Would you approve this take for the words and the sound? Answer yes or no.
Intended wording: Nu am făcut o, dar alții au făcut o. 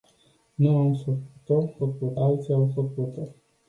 no